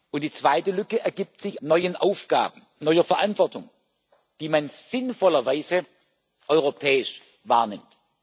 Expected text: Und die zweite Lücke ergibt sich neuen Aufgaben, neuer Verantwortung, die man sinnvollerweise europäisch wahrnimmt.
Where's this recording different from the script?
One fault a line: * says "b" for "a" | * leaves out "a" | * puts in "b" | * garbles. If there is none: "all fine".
all fine